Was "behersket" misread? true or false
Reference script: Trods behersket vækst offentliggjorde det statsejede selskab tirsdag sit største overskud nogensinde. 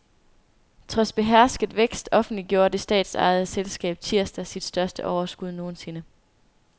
false